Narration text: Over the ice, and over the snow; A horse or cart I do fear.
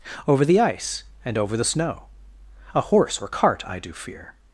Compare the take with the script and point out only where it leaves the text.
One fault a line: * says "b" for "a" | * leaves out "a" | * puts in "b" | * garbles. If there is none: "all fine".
all fine